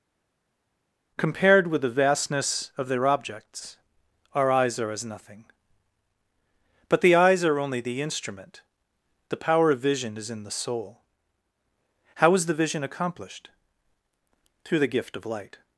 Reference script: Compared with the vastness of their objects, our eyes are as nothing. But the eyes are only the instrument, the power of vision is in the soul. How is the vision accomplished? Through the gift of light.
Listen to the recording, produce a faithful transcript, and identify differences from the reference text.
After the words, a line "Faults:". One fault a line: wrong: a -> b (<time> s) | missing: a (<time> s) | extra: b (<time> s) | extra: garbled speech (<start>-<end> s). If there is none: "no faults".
Compared with the vastness of their objects, our eyes are as nothing. But the eyes are only the instrument, the power of vision is in the soul. How is the vision accomplished? Through the gift of light.
Faults:
no faults